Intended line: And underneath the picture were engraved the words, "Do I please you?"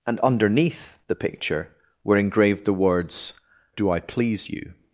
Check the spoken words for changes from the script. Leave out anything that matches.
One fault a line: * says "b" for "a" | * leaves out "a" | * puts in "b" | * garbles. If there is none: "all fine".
all fine